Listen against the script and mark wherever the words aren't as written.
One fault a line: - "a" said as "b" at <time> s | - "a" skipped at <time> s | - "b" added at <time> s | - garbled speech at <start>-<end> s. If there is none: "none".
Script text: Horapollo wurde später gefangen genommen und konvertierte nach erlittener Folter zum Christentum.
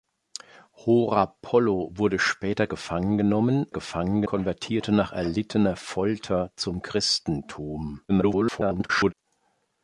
- "und" said as "gefangen" at 3.7 s
- garbled speech at 8.1-9.1 s